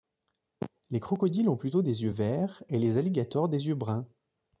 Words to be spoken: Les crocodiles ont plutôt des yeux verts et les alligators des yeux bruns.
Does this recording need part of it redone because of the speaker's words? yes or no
no